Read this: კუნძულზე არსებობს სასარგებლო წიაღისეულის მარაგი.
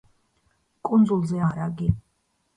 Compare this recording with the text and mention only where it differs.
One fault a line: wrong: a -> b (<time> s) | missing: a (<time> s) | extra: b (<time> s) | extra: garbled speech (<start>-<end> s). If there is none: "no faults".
missing: არსებობს სასარგებლო წიაღისეულის (1.4 s)